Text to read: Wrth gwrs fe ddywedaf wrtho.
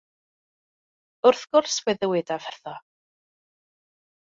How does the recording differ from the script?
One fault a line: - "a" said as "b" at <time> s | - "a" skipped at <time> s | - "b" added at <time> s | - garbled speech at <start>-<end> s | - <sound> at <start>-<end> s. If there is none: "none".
none